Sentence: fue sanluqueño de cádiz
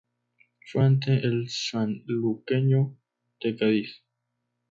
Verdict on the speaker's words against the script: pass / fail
fail